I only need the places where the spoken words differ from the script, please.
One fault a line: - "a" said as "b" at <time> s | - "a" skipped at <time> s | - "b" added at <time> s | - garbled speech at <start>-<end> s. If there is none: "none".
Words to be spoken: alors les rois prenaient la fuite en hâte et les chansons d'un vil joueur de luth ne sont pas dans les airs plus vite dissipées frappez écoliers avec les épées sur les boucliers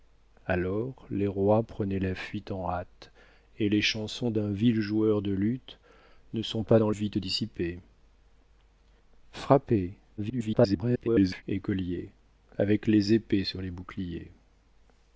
- "les airs plus" skipped at 6.9 s
- garbled speech at 10.2-11.4 s